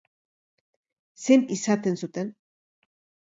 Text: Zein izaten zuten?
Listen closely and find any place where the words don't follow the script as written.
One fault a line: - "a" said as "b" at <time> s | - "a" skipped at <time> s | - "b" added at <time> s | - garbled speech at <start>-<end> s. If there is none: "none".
none